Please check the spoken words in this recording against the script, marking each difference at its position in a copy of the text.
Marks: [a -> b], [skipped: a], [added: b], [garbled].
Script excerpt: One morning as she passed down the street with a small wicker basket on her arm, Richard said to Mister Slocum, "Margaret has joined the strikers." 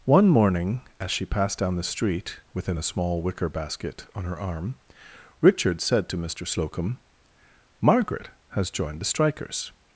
One morning as she passed down the street [with -> within] a small wicker basket on her arm, Richard said to Mister Slocum, "Margaret has joined the strikers."